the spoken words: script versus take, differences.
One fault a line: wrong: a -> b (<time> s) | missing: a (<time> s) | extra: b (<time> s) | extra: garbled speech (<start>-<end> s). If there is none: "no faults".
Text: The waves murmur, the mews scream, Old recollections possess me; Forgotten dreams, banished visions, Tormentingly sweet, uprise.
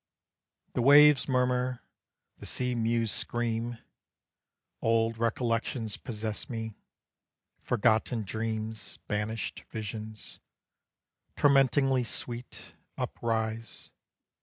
extra: sea (2.4 s)